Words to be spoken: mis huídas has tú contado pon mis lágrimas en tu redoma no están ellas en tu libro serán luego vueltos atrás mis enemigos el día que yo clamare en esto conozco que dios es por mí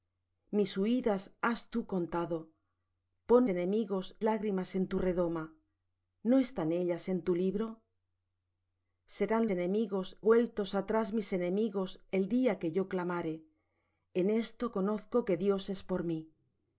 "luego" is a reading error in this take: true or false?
true